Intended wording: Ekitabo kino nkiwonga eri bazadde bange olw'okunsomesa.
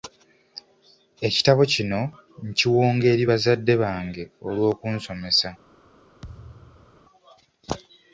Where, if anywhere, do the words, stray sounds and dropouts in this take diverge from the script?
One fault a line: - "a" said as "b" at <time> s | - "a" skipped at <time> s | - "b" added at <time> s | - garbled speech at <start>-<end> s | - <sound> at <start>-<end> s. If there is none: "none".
- thud at 6.2-7.0 s